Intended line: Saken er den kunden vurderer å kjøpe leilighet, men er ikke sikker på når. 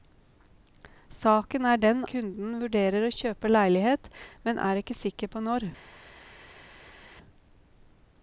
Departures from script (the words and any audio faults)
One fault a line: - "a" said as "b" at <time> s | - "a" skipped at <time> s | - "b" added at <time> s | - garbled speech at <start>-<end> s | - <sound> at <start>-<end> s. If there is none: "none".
none